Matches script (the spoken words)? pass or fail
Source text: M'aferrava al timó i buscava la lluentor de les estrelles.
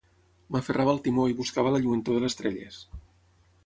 fail